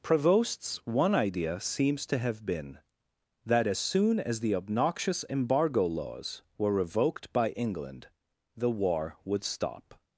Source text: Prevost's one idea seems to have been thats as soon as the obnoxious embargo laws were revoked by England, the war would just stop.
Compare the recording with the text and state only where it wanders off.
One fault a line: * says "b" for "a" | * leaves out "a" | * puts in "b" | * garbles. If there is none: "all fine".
* says "that" for "thats"
* leaves out "just"